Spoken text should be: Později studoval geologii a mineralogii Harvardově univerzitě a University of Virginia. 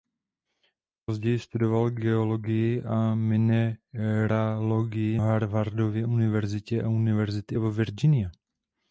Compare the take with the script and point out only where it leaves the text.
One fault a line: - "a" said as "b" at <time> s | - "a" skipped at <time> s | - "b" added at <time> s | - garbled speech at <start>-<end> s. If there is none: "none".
none